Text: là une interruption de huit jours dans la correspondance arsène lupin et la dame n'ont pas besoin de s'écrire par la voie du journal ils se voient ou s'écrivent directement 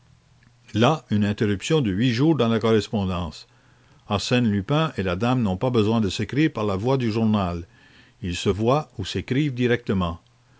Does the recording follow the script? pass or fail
pass